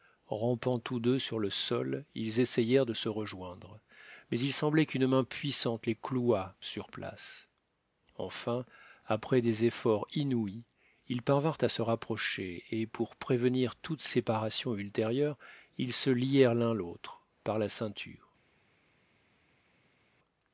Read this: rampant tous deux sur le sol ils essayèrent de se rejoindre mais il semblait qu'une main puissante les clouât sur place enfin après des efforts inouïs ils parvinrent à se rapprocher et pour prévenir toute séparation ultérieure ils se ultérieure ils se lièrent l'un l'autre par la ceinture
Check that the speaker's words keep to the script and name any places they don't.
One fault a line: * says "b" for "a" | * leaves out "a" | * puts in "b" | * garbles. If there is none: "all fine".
* leaves out "ultérieure ils se"